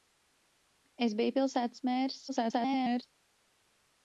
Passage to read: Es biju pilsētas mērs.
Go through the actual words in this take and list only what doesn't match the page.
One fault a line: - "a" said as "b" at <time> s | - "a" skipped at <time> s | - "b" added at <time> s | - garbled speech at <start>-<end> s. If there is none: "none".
- garbled speech at 2.3-3.0 s